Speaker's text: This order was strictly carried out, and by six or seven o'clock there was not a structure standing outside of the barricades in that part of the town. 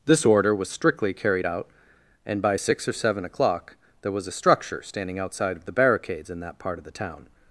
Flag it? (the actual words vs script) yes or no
yes